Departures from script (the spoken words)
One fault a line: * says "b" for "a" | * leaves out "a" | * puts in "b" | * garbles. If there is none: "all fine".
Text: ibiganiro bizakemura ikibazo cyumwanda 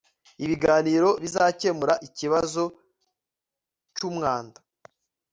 all fine